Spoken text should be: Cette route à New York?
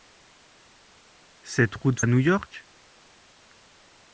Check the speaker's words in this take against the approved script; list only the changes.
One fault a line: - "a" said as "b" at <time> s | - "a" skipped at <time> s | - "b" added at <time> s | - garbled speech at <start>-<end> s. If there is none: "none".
none